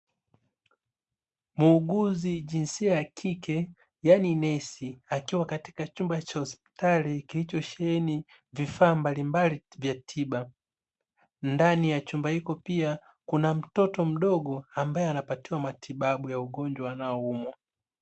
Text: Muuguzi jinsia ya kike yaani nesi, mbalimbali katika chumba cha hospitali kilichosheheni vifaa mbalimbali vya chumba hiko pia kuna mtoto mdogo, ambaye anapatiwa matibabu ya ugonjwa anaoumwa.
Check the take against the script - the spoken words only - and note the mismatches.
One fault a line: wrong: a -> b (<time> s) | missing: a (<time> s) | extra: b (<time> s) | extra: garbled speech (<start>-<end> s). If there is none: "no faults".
wrong: mbalimbali -> akiwa (5.1 s)
extra: tiba Ndani ya (9.9 s)